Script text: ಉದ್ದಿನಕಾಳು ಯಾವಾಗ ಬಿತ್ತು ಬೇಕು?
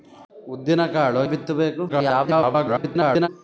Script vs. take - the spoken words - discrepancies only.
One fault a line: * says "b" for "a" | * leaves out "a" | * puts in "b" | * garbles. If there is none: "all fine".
* leaves out "ಯಾವಾಗ"
* garbles